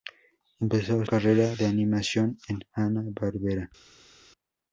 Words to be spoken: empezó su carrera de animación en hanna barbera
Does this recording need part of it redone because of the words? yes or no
yes